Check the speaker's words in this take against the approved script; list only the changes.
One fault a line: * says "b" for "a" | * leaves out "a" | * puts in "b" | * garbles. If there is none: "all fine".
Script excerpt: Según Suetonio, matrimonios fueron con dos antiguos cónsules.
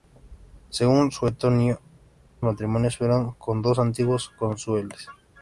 all fine